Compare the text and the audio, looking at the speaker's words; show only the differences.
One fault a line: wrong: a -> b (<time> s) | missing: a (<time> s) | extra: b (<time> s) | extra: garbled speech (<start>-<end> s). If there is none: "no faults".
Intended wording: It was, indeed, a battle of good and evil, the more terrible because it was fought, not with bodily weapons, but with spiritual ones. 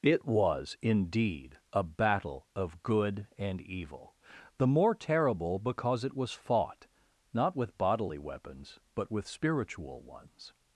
no faults